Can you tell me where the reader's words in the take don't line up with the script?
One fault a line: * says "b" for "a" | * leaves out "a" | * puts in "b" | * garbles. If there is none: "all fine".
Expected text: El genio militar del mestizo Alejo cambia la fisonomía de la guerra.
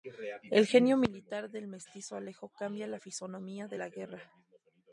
all fine